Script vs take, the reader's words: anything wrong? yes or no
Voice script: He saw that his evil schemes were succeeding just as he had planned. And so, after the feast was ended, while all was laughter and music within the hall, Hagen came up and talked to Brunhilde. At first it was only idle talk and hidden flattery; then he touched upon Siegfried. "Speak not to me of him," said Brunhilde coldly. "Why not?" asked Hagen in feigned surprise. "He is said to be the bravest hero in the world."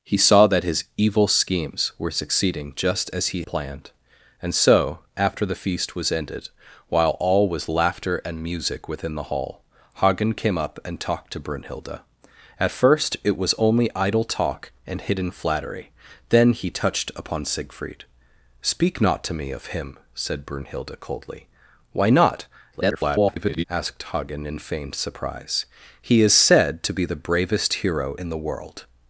yes